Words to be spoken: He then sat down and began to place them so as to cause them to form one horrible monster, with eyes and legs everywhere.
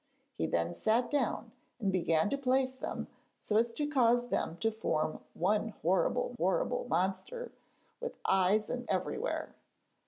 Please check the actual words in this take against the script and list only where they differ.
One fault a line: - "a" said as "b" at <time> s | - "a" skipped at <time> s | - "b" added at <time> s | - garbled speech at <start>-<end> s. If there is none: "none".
- "horrible" added at 6.4 s
- "legs" skipped at 8.9 s